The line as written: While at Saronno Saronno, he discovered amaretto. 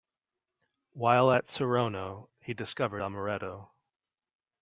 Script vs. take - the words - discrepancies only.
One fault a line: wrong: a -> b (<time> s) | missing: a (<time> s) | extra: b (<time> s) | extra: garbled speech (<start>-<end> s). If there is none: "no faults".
missing: Saronno (2.3 s)